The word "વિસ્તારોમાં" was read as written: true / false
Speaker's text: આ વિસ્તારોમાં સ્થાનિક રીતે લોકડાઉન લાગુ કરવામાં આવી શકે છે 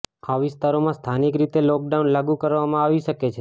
true